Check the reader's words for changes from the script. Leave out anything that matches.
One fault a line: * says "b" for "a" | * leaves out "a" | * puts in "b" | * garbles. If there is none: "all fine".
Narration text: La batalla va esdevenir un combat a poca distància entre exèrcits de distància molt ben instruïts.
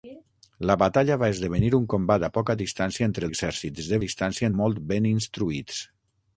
all fine